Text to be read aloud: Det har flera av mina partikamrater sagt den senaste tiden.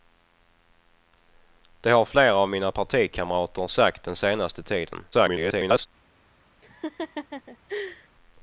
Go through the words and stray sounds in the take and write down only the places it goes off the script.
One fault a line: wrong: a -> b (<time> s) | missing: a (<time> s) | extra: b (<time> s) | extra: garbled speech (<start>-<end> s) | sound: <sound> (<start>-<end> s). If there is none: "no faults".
extra: garbled speech (5.1-5.9 s)
sound: laugh (6.6-8.1 s)